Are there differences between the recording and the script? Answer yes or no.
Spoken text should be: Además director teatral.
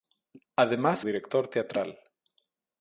no